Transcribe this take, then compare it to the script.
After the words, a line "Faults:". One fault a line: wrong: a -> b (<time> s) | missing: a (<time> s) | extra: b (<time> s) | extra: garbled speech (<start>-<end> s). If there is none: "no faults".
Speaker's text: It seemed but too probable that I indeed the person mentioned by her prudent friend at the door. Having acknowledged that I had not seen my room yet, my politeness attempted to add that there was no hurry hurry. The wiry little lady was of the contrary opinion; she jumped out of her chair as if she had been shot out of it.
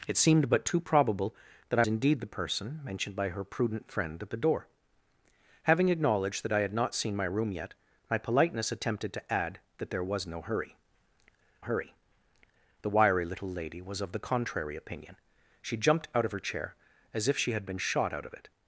It seemed but too probable that I indeed the person mentioned by her prudent friend at the door. Having acknowledged that I had not seen my room yet, my politeness attempted to add that there was no hurry hurry. The wiry little lady was of the contrary opinion; she jumped out of her chair as if she had been shot out of it.
Faults:
no faults